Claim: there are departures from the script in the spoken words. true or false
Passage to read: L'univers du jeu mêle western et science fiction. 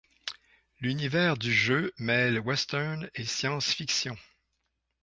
false